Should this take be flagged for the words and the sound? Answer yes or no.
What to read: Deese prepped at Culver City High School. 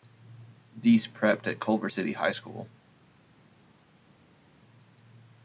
no